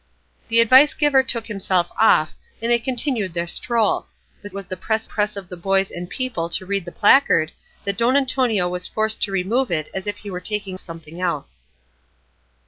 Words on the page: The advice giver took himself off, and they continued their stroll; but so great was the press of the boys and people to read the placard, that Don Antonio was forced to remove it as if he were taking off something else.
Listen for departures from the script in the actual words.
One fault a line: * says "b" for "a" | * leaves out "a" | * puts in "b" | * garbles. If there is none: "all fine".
* leaves out "so great"
* puts in "press"
* leaves out "off"